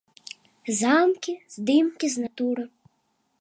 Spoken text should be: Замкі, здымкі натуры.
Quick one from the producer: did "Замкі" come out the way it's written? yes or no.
yes